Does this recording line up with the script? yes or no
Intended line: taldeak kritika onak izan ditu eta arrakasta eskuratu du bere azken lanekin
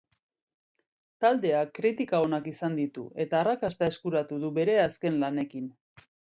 yes